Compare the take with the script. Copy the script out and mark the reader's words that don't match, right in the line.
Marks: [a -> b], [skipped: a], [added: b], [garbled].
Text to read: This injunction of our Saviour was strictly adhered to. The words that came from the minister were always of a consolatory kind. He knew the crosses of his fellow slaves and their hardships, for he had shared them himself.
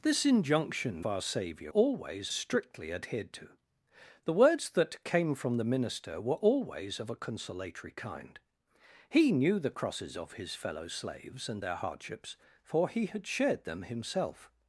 This injunction [skipped: of] our Saviour [was -> always] strictly adhered to. The words that came from the minister were always of a consolatory kind. He knew the crosses of his fellow slaves and their hardships, for he had shared them himself.